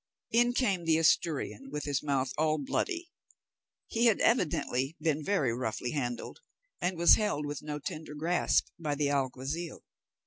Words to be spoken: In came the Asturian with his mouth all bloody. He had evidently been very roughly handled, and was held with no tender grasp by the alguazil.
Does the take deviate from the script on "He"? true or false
false